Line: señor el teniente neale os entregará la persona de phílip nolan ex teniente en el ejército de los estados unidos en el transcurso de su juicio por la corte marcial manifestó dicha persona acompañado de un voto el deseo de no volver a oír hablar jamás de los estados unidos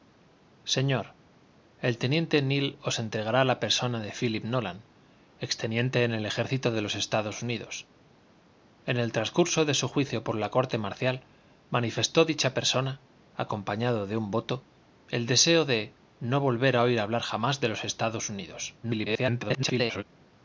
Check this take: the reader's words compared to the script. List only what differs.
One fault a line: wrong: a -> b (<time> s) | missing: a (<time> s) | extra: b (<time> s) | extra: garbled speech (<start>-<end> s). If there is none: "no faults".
extra: garbled speech (18.8-20.0 s)